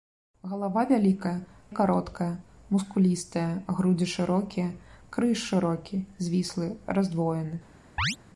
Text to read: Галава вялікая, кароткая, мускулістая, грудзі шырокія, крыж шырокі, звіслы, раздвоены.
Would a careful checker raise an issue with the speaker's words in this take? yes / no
no